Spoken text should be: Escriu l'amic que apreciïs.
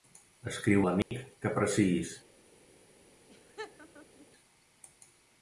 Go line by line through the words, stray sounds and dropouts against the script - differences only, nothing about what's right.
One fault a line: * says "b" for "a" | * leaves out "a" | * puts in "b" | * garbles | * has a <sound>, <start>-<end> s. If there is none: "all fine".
* has a dropout, 1.0-1.1 s
* has a laugh, 3.3-4.3 s